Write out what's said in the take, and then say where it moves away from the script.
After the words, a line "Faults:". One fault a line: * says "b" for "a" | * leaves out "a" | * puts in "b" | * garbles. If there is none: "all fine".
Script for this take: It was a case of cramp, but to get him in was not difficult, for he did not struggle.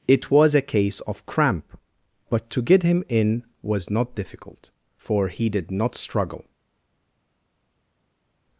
It was a case of cramp, but to get him in was not difficult, for he did not struggle.
Faults:
all fine